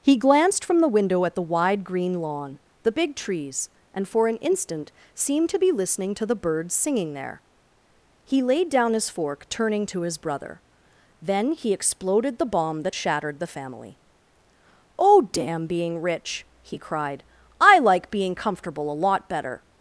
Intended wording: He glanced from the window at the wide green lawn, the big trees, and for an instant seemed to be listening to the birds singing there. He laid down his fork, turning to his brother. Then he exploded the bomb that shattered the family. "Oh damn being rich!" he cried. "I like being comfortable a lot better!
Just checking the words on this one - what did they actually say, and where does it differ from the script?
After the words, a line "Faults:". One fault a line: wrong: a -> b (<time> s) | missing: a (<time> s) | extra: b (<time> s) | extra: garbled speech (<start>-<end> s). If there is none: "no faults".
He glanced from the window at the wide green lawn, the big trees, and for an instant seemed to be listening to the birds singing there. He laid down his fork, turning to his brother. Then he exploded the bomb that shattered the family. "Oh damn being rich!" he cried. "I like being comfortable a lot better!
Faults:
no faults